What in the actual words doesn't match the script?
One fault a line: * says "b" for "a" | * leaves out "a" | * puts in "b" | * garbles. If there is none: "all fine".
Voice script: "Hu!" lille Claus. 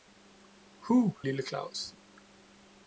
all fine